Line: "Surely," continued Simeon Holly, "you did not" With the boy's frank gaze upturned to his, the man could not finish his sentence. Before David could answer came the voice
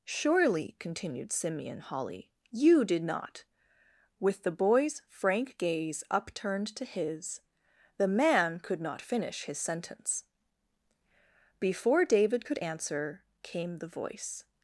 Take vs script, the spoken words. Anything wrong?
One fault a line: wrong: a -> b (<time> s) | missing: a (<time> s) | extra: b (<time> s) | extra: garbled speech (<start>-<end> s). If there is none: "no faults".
no faults